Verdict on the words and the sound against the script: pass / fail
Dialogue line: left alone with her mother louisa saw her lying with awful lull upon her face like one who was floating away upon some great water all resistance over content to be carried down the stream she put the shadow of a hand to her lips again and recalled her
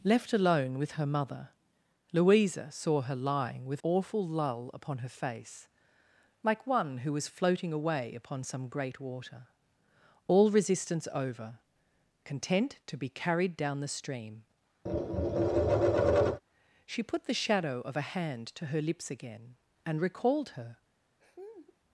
fail